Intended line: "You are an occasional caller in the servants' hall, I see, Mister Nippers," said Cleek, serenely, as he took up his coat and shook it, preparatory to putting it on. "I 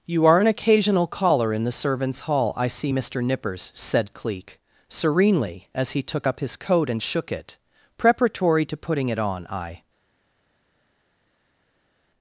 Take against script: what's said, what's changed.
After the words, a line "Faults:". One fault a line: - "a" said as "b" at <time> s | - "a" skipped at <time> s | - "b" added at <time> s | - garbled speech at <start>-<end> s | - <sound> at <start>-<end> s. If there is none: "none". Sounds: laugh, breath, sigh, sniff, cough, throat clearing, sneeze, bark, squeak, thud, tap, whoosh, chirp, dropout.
"You are an occasional caller in the servants' hall, I see, Mister Nippers," said Cleek, serenely, as he took up his coat and shook it, preparatory to putting it on. "I
Faults:
none